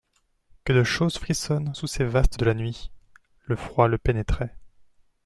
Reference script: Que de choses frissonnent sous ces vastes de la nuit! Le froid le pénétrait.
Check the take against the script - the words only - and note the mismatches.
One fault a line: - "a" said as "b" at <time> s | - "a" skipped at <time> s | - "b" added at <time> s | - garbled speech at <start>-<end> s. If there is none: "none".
none